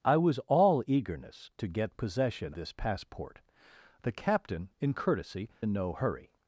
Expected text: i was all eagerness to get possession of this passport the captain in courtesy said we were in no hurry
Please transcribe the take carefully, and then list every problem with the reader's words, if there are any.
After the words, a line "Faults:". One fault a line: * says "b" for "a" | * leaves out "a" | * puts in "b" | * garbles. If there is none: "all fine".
i was all eagerness to get possession this passport the captain in courtesy in no hurry
Faults:
* leaves out "of"
* leaves out "said we were"